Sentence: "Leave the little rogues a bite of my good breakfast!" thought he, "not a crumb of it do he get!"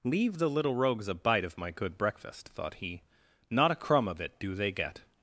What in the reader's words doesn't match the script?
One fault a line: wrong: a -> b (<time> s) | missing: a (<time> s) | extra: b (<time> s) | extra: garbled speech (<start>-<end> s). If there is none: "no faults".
wrong: he -> they (4.5 s)